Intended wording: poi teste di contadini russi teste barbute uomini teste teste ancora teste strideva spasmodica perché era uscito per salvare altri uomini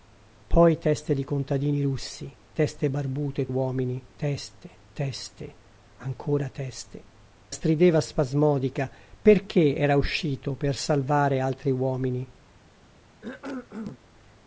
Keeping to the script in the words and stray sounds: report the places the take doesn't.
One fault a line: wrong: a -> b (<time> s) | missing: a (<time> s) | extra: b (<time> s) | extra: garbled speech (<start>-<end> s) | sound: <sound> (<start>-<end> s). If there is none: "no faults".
sound: cough (13.2-14.0 s)